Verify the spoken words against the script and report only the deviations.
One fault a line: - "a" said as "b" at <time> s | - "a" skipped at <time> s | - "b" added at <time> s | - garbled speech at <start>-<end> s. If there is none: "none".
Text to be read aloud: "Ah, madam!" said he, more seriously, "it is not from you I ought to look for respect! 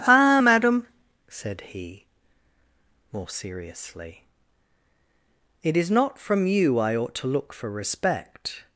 none